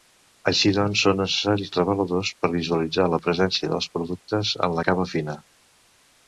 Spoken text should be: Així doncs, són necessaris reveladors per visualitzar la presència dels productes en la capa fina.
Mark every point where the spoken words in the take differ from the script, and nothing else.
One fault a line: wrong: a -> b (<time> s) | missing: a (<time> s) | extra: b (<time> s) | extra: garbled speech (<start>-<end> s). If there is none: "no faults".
no faults